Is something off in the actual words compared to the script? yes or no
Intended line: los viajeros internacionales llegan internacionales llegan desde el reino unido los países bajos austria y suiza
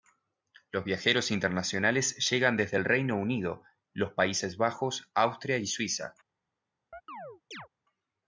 yes